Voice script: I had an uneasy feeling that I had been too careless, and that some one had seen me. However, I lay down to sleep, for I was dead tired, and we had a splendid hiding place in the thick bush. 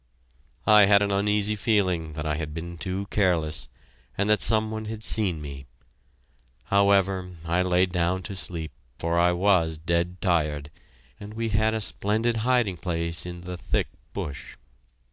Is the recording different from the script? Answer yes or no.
no